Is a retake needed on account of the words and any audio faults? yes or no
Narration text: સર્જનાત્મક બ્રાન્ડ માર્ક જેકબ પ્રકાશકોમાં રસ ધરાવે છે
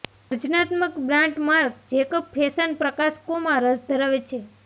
yes